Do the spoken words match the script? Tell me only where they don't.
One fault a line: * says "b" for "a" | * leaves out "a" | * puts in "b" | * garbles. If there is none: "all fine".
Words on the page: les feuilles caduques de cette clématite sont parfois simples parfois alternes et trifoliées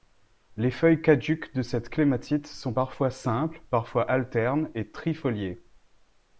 all fine